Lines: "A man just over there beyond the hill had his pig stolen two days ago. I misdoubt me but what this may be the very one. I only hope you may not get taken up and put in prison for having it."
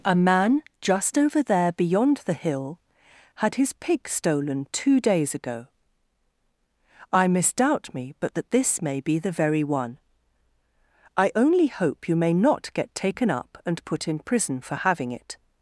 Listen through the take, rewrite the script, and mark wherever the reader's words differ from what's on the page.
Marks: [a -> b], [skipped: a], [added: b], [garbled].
"A man just over there beyond the hill had his pig stolen two days ago. I misdoubt me but [what -> that] this may be the very one. I only hope you may not get taken up and put in prison for having it."